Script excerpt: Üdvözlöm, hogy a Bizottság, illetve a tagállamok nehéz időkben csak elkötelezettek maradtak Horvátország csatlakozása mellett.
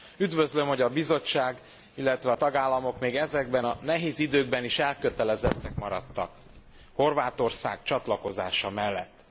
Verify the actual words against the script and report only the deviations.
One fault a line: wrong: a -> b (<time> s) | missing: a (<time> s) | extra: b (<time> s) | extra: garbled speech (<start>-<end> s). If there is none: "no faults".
extra: még ezekben a (3.0 s)
wrong: csak -> is (4.6 s)